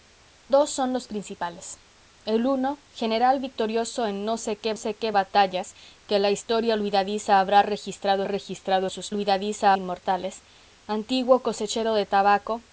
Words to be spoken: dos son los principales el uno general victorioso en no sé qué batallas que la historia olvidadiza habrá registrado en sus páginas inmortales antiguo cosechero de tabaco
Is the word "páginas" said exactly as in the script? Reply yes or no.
no